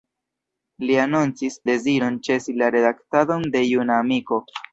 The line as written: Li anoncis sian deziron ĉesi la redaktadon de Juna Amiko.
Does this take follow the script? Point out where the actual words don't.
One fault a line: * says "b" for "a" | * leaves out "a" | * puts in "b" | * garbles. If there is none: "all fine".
* leaves out "sian"